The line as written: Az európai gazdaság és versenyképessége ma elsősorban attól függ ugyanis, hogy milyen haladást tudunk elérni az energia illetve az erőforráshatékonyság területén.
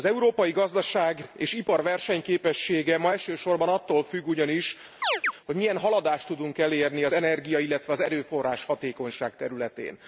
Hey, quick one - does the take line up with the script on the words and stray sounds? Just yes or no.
no